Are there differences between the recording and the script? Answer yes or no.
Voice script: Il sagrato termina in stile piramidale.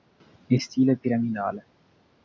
yes